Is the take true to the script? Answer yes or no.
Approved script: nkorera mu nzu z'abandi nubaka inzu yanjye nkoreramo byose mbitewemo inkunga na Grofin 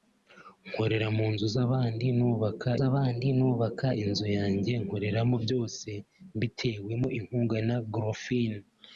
no